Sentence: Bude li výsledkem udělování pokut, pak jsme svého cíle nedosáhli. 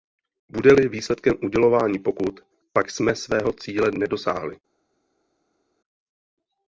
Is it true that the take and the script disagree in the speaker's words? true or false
false